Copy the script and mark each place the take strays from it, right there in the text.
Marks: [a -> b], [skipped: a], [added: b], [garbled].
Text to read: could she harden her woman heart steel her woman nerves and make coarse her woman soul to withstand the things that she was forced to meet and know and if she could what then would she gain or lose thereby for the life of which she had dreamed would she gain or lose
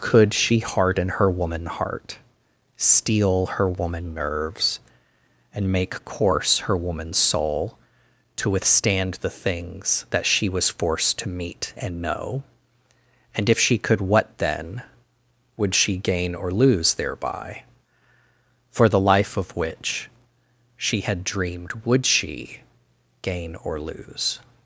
could she harden her woman heart steel her woman nerves and make coarse her woman soul to withstand the things that she was forced to meet and know and if she could what then would she gain or lose thereby for the life of which she had dreamed would she gain or lose